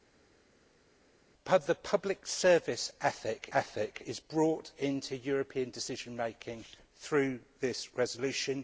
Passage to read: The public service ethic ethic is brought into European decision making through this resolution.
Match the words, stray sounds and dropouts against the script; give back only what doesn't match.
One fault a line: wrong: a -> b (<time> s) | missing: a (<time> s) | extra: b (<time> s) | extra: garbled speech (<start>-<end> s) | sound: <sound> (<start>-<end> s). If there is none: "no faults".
no faults